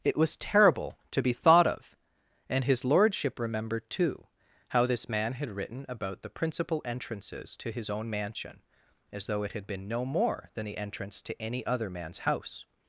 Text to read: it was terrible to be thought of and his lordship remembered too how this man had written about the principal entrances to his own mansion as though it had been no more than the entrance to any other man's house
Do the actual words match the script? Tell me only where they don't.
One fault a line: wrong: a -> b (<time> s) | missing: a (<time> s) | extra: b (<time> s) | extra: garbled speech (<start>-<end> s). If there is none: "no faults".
no faults